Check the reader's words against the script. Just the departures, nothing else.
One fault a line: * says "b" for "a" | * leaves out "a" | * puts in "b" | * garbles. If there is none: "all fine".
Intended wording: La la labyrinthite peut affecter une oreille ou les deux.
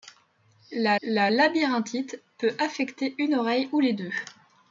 all fine